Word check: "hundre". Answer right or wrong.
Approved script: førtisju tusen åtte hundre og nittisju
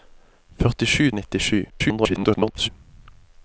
wrong